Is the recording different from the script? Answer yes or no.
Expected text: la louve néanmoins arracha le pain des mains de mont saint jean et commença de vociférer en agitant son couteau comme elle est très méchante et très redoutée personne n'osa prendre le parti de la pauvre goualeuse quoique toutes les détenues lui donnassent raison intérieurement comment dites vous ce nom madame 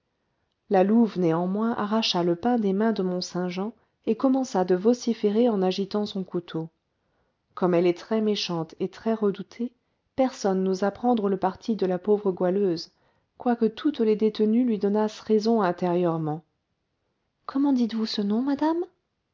no